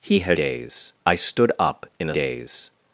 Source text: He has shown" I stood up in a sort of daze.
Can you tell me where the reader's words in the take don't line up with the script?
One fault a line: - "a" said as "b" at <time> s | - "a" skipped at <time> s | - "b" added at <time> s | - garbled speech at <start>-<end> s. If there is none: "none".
- "shown" said as "daze" at 0.3 s
- "sort of" skipped at 2.2 s